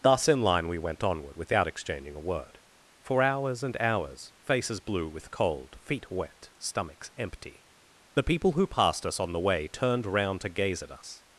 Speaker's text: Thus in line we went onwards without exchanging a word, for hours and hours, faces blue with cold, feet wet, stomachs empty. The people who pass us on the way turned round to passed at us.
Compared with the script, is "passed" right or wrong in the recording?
wrong